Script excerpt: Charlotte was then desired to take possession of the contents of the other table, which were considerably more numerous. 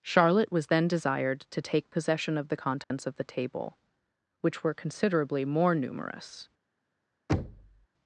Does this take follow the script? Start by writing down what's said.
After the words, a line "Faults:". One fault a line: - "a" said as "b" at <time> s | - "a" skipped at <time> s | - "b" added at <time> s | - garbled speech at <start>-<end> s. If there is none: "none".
Charlotte was then desired to take possession of the contents of the table, which were considerably more numerous.
Faults:
- "other" skipped at 3.2 s